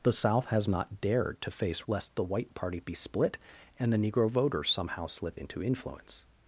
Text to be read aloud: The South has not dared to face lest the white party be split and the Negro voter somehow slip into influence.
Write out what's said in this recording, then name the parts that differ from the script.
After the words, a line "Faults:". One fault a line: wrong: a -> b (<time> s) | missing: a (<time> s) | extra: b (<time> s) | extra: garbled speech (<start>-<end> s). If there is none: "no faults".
The South has not dared to face lest the white party be split and the Negro voter somehow slip into influence.
Faults:
no faults